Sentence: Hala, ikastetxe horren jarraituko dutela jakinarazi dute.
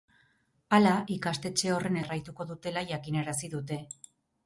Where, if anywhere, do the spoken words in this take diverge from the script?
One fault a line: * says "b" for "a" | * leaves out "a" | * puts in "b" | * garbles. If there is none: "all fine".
all fine